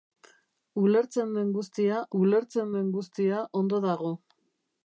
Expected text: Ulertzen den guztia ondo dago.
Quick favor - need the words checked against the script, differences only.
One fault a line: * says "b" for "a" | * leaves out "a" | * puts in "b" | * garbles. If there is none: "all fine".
* puts in "ulertzen den guztia"